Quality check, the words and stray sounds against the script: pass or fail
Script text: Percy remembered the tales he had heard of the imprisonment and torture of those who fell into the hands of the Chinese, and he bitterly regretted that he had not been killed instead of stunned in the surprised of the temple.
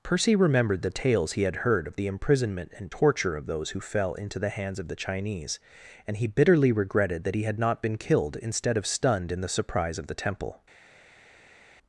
fail